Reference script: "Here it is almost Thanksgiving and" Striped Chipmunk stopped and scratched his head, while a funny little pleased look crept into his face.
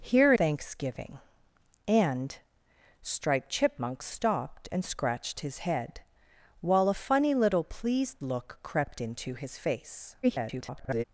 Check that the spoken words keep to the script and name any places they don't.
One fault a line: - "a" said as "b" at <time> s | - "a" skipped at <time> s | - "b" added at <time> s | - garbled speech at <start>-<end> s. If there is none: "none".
- "it is almost" skipped at 0.3 s
- garbled speech at 10.2-11.0 s